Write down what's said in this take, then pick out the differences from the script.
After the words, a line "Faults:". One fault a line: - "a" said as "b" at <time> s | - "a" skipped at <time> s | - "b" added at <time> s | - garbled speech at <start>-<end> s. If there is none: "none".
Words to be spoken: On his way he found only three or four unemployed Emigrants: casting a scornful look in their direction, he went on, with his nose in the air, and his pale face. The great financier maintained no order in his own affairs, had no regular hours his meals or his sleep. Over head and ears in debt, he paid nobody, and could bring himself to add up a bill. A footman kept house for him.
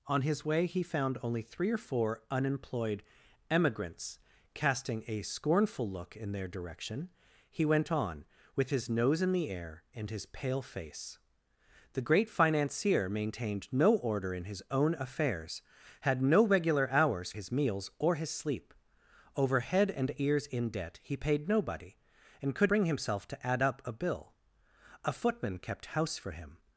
On his way he found only three or four unemployed Emigrants: casting a scornful look in their direction, he went on, with his nose in the air, and his pale face. The great financier maintained no order in his own affairs, had no regular hours his meals or his sleep. Over head and ears in debt, he paid nobody, and could bring himself to add up a bill. A footman kept house for him.
Faults:
none